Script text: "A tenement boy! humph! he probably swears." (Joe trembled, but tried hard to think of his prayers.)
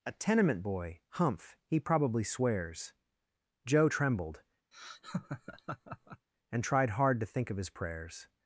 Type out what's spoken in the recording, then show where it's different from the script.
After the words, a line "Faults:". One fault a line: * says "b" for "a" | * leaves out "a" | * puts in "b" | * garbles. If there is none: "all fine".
"A tenement boy! humph! he probably swears." (Joe trembled, and tried hard to think of his prayers.)
Faults:
* says "and" for "but"